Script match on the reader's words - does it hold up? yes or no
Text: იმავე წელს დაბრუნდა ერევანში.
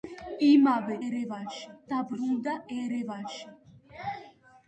no